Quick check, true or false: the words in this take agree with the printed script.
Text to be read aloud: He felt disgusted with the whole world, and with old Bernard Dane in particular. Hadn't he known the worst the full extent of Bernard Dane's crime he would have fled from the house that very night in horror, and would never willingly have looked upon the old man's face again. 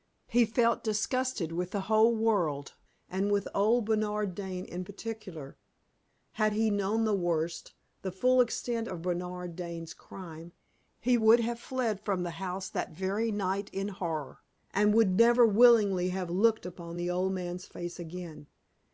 false